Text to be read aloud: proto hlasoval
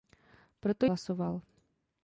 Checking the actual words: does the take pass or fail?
pass